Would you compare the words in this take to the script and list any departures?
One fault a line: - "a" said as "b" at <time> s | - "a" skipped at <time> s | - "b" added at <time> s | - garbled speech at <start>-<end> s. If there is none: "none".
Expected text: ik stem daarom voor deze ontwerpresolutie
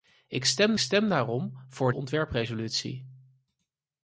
- "stem" added at 0.8 s
- "deze" skipped at 1.9 s